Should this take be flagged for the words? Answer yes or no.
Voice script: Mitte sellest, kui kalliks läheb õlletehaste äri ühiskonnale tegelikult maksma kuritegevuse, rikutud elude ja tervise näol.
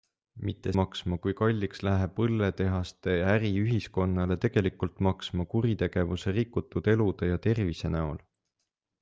yes